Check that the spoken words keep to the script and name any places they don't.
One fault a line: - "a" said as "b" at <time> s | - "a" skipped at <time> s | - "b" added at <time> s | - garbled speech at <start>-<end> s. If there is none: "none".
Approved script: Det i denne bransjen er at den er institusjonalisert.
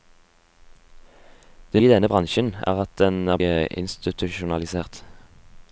none